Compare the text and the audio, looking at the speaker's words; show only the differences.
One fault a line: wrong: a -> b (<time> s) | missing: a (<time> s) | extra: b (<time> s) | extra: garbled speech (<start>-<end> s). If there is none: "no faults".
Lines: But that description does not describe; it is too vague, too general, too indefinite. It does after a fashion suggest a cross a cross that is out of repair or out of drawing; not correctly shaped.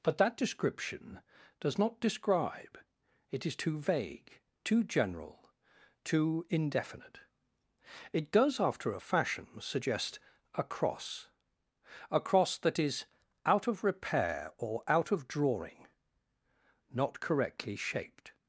no faults